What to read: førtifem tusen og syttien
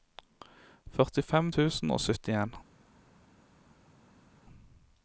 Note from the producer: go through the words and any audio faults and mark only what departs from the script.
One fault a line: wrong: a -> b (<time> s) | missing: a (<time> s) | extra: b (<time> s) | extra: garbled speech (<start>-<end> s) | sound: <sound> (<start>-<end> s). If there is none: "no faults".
no faults